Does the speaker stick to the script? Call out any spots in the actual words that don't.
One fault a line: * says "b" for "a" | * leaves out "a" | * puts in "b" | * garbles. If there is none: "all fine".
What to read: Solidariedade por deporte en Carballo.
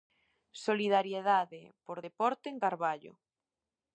all fine